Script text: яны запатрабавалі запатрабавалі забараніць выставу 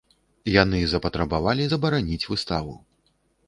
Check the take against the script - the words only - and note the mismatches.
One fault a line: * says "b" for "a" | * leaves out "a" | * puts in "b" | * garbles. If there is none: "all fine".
* leaves out "запатрабавалі"